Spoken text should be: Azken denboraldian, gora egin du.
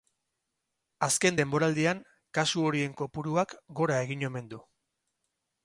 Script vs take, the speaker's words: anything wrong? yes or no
yes